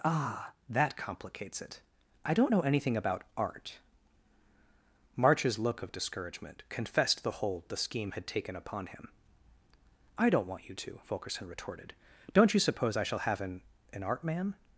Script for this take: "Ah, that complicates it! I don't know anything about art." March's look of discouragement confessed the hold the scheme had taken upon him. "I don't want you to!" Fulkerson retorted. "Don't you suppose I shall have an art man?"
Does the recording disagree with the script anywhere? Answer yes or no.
yes